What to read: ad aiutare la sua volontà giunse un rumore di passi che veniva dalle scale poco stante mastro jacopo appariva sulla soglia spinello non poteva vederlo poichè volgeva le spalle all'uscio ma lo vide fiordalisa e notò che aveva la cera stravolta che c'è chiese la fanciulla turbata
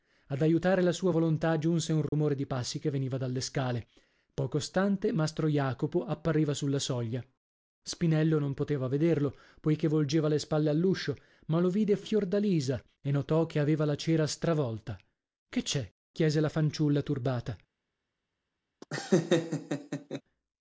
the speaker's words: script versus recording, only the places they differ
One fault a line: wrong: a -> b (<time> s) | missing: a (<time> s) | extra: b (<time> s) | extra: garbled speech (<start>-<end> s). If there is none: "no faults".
no faults